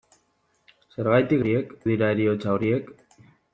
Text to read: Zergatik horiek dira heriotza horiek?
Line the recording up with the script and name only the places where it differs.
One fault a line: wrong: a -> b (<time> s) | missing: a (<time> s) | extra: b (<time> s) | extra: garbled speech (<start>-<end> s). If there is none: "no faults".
no faults